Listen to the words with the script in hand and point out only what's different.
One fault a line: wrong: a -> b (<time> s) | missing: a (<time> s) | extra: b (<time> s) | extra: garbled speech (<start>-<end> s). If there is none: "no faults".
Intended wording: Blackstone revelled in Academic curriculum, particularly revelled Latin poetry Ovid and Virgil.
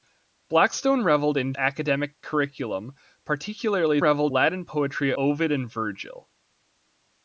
no faults